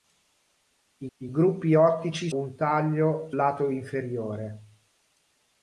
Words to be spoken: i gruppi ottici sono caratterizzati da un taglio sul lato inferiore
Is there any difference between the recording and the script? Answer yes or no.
yes